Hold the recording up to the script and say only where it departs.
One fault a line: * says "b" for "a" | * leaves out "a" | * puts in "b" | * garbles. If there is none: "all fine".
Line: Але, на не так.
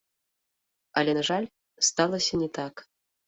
* puts in "жаль сталася"